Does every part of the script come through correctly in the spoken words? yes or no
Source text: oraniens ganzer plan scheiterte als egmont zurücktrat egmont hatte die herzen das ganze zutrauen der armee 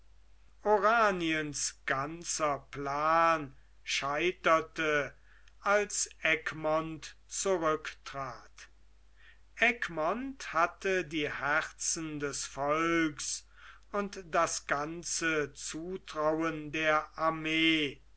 no